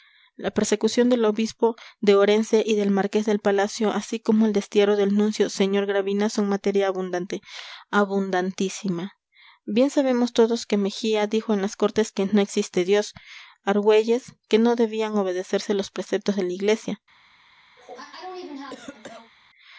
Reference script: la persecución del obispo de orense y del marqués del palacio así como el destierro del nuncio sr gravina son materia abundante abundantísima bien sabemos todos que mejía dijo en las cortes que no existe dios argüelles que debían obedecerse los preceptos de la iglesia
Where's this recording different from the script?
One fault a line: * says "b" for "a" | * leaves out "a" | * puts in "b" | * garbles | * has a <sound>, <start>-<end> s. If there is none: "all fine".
* puts in "no"
* has a cough, 17.8-19.3 s